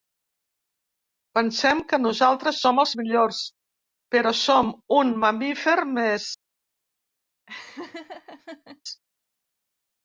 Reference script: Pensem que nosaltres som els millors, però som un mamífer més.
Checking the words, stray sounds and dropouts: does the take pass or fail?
fail